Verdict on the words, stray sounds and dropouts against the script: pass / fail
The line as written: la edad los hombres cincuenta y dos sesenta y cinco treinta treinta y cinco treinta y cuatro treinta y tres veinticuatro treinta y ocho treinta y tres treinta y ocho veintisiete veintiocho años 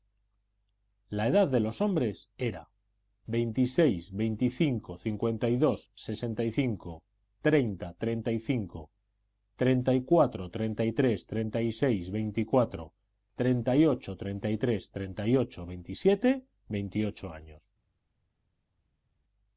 fail